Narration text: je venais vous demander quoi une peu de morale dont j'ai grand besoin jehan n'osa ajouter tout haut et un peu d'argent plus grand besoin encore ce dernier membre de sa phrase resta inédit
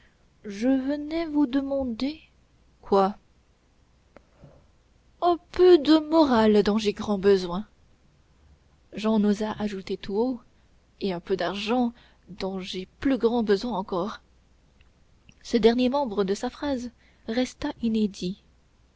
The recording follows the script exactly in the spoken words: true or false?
false